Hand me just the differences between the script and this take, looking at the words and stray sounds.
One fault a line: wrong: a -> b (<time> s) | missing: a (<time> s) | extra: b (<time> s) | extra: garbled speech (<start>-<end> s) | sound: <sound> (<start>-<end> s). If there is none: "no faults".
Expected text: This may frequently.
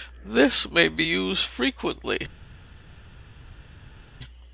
extra: be used (0.9 s)